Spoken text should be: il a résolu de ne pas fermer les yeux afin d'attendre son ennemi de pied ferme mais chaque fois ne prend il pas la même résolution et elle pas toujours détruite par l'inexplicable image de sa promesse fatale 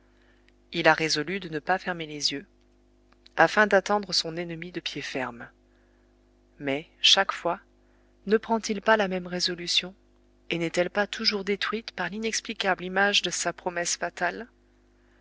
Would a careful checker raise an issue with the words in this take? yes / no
yes